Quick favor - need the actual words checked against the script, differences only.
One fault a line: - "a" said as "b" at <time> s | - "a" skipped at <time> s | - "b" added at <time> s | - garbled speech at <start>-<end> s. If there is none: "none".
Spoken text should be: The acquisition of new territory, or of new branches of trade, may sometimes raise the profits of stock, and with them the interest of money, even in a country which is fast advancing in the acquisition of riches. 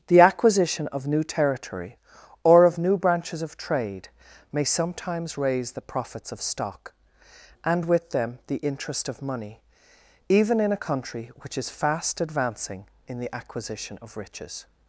none